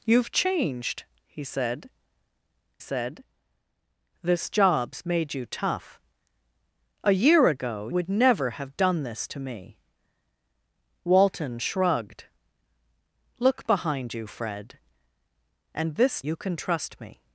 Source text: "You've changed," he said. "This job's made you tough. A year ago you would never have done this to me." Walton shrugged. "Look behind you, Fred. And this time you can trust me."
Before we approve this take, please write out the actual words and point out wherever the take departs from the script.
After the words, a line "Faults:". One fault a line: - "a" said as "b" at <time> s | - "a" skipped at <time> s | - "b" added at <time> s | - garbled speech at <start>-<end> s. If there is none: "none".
"You've changed," he said said. "This job's made you tough. A year ago would never have done this to me." Walton shrugged. "Look behind you, Fred. And this you can trust me."
Faults:
- "said" added at 2.8 s
- "you" skipped at 7.9 s
- "time" skipped at 16.2 s